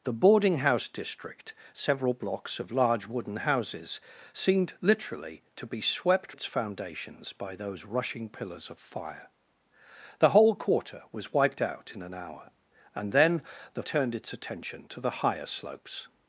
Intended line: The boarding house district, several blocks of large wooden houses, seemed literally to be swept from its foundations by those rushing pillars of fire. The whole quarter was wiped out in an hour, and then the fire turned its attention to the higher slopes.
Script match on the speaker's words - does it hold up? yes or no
no